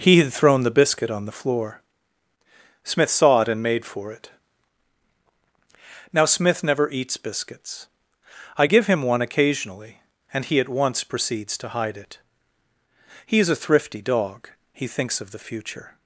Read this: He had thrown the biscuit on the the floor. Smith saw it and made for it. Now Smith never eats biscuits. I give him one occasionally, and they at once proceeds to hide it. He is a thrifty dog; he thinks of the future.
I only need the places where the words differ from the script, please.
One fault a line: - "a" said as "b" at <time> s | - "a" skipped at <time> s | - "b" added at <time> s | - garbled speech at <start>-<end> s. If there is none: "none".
- "the" skipped at 1.4 s
- "they" said as "he" at 10.4 s